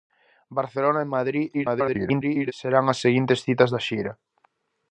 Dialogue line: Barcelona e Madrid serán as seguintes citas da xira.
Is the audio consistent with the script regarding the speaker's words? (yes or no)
no